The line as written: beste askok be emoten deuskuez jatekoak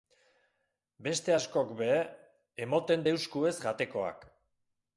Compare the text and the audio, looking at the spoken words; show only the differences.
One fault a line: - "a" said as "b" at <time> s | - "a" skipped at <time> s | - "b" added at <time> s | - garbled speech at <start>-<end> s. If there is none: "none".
none